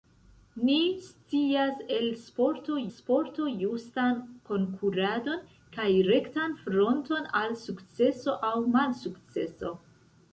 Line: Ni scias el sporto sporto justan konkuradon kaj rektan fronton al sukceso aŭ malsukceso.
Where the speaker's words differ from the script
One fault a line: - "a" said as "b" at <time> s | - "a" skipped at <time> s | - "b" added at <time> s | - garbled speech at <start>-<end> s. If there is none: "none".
none